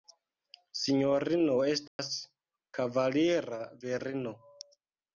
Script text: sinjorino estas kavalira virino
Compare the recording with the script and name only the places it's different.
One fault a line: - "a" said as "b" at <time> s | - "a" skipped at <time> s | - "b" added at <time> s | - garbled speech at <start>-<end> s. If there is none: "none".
none